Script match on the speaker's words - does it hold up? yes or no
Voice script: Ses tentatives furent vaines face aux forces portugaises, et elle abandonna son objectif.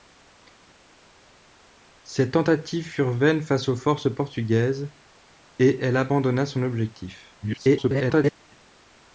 no